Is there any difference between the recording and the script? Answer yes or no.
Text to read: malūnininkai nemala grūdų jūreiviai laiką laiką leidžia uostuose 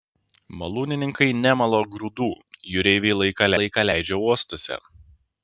no